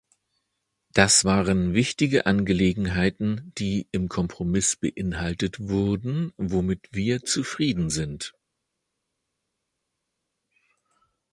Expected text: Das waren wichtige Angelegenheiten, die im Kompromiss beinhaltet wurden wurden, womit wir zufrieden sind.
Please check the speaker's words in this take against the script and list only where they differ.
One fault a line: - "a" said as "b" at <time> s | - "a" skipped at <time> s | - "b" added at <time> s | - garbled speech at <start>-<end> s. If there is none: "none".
- "wurden" skipped at 6.3 s